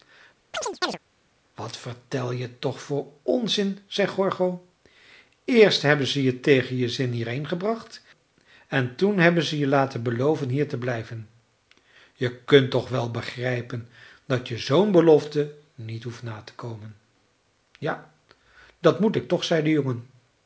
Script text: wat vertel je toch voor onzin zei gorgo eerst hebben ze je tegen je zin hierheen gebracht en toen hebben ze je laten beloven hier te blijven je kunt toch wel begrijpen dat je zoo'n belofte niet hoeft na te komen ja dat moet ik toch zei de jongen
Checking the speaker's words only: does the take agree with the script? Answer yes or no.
yes